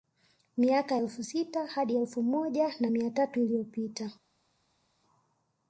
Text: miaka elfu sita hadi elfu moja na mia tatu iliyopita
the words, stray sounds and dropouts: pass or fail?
pass